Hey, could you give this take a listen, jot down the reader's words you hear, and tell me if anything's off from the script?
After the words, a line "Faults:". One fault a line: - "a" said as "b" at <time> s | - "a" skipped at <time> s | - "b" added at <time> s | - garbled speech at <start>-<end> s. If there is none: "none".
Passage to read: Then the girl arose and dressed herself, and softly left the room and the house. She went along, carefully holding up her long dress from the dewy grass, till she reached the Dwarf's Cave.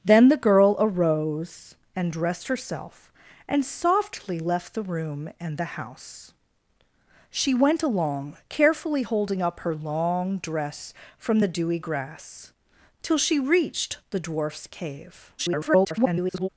Then the girl arose and dressed herself, and softly left the room and the house. She went along, carefully holding up her long dress from the dewy grass, till she reached the Dwarf's Cave. [garbled]
Faults:
- garbled speech at 15.4-16.5 s